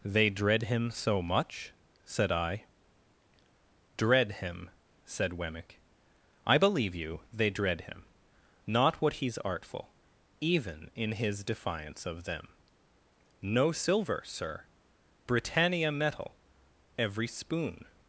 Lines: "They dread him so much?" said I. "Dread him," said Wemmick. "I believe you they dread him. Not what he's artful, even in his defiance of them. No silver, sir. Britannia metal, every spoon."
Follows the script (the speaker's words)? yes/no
yes